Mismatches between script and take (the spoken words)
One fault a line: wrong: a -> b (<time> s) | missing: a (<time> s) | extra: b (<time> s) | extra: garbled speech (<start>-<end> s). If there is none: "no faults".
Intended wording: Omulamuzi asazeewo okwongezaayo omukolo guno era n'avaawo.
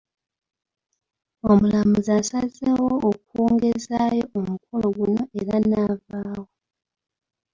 no faults